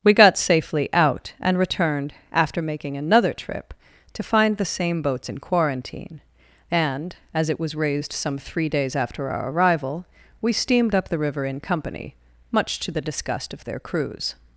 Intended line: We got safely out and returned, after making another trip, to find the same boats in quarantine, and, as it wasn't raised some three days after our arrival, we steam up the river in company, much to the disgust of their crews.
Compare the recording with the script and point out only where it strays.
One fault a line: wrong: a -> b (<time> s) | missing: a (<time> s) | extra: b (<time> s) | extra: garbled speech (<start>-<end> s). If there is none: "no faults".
wrong: wasn't -> was (7.6 s)
wrong: steam -> steamed (10.5 s)